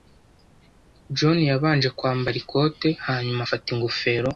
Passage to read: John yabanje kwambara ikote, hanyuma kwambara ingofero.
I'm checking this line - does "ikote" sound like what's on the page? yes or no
yes